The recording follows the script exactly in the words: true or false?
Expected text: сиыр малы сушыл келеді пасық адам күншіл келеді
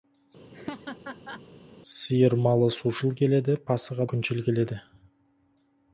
false